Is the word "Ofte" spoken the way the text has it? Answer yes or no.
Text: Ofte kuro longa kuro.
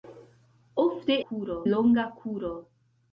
yes